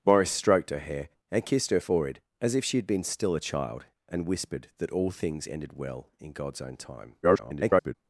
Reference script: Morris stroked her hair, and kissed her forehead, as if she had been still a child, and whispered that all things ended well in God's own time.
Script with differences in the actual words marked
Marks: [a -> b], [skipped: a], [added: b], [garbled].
Morris stroked her hair, and kissed her forehead, as if she had been still a child, and whispered that all things ended well in God's own time. [garbled]